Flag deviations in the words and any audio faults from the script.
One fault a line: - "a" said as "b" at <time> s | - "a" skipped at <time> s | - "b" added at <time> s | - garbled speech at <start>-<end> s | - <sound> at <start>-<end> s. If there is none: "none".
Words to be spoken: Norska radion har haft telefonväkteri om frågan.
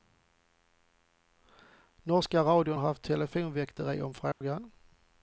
- dropout at 4.3-4.4 s